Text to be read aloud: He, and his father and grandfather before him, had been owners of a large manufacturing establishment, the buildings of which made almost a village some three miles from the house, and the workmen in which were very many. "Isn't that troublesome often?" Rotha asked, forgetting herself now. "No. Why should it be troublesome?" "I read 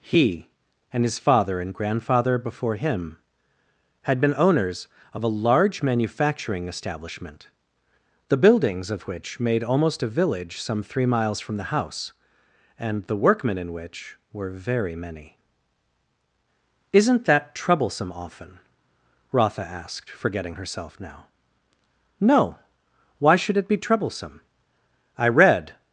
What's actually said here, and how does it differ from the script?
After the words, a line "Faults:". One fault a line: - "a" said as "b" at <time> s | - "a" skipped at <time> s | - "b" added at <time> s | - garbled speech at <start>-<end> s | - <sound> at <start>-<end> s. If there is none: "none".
He, and his father and grandfather before him, had been owners of a large manufacturing establishment, the buildings of which made almost a village some three miles from the house, and the workmen in which were very many. "Isn't that troublesome often?" Rotha asked, forgetting herself now. "No. Why should it be troublesome?" "I read
Faults:
none